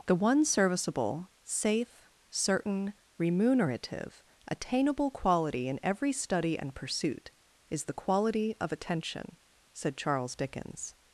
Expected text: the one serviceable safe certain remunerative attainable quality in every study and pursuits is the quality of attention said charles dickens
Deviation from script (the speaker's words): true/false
true